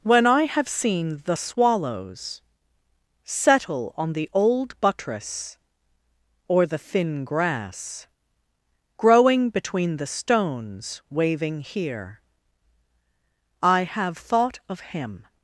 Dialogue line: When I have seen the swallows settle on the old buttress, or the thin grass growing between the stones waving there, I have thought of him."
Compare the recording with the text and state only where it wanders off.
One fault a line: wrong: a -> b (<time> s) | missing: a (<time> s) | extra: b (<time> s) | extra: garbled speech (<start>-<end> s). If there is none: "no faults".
wrong: there -> here (11.6 s)